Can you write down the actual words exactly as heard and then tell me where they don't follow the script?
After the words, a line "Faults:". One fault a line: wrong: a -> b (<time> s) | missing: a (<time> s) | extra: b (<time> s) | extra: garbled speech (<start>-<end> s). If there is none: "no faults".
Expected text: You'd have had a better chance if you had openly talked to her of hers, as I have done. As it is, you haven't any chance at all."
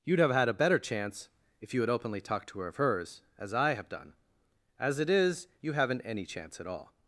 You'd have had a better chance if you had openly talked to her of hers, as I have done. As it is, you haven't any chance at all."
Faults:
no faults